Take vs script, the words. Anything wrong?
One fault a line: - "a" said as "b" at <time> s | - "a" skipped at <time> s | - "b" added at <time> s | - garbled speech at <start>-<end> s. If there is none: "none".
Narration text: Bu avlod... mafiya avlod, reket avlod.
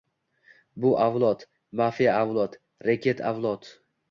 none